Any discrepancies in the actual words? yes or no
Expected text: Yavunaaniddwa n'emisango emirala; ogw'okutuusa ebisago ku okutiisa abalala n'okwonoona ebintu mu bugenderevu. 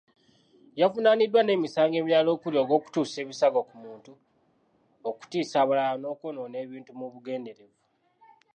yes